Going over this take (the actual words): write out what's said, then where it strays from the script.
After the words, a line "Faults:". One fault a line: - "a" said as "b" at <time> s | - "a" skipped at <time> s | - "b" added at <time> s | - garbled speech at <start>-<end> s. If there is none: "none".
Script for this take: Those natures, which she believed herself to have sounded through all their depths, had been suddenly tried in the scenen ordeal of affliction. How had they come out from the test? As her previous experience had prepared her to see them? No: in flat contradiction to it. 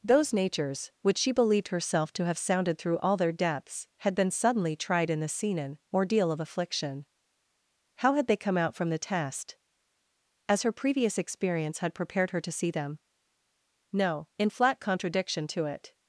Those natures, which she believed herself to have sounded through all their depths, had been suddenly tried in the scenen ordeal of affliction. How had they come out from the test? As her previous experience had prepared her to see them? No: in flat contradiction to it.
Faults:
none